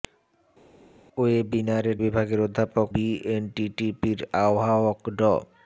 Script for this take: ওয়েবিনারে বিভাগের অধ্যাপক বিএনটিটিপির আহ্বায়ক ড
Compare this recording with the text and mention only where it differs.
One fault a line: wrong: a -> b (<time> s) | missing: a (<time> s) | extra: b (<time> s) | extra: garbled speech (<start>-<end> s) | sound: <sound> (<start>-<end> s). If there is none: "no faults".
no faults